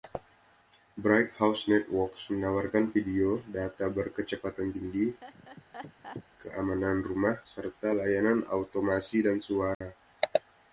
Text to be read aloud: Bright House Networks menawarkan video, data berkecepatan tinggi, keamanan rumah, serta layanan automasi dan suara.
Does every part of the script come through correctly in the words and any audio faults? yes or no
no